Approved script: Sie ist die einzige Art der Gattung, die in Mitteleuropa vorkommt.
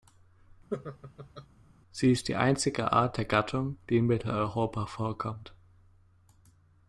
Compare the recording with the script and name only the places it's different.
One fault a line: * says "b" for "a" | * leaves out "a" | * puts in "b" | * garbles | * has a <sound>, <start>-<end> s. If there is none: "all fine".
* has a laugh, 0.7-1.5 s